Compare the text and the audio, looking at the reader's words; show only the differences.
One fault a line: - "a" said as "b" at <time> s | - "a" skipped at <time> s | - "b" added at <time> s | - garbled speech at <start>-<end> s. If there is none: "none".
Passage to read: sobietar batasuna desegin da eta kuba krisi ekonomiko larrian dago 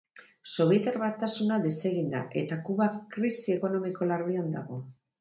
none